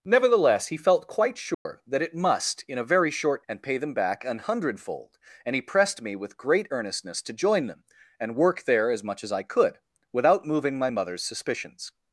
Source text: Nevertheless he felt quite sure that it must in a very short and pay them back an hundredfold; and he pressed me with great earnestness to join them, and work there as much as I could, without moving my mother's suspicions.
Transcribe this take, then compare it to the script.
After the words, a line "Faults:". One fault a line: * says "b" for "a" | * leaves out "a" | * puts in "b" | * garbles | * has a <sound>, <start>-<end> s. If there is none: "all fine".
Nevertheless he felt quite sure that it must in a very short and pay them back an hundredfold; and he pressed me with great earnestness to join them, and work there as much as I could, without moving my mother's suspicions.
Faults:
* has a dropout, 1.5-1.7 s